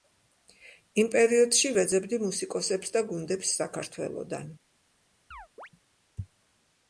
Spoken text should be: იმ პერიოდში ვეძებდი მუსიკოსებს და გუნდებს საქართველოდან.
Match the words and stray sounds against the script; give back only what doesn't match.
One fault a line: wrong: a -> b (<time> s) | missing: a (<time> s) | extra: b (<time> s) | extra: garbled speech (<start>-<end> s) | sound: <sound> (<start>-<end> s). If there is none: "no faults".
sound: chirp (5.3-5.7 s)